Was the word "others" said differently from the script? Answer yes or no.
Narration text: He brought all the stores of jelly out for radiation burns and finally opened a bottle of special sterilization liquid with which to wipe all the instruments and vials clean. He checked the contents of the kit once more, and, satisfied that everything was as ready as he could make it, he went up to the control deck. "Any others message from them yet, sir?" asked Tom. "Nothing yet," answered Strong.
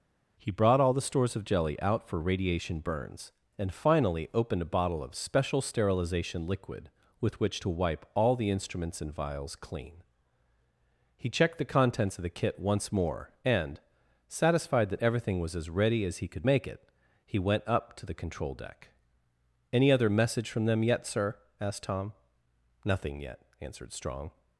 yes